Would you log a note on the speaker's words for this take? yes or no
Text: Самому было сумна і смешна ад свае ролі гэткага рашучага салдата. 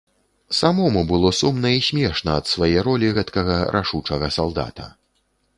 no